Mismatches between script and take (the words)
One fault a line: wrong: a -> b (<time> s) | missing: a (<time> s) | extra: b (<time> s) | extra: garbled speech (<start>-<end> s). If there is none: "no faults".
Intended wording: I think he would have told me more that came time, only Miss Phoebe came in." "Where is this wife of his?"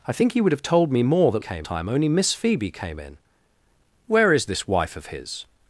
no faults